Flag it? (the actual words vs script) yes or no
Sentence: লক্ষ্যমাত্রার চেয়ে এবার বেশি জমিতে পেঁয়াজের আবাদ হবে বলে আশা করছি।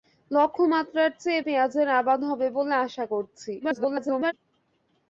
yes